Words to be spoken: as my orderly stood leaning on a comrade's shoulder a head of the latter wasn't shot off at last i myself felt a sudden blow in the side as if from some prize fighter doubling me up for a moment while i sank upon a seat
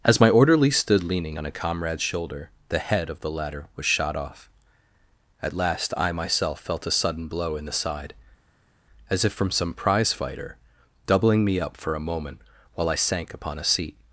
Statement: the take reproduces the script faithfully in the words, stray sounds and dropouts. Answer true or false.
false